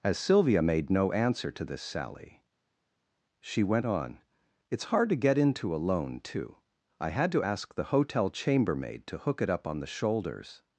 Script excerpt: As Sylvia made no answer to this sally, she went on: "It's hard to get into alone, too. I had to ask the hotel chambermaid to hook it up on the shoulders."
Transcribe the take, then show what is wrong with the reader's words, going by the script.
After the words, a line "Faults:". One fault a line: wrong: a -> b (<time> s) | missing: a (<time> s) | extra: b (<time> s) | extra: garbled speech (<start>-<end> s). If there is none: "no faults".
As Sylvia made no answer to this sally, she went on: "It's hard to get into alone, too. I had to ask the hotel chambermaid to hook it up on the shoulders."
Faults:
no faults